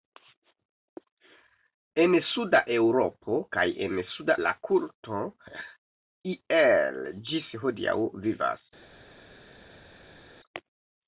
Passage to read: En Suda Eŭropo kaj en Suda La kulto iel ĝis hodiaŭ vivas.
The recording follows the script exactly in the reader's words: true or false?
true